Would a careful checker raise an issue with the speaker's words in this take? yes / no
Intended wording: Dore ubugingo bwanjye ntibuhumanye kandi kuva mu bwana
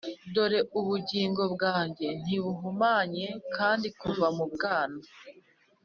no